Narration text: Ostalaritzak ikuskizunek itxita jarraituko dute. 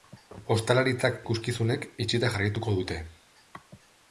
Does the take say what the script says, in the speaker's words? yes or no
yes